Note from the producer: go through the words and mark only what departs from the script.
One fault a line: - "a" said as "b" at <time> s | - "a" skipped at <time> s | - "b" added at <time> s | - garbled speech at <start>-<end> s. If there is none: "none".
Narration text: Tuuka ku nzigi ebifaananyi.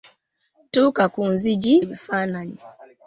none